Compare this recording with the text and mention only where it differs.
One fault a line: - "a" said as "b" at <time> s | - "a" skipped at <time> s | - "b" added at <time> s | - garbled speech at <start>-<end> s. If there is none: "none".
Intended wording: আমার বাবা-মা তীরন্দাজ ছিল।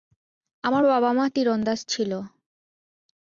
none